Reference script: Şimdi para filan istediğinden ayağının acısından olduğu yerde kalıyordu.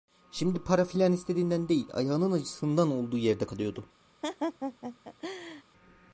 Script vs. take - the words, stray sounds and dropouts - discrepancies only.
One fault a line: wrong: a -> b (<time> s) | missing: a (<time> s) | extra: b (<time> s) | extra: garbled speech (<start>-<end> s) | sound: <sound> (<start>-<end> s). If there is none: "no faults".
extra: değil (1.7 s)
sound: laugh (4.2-5.6 s)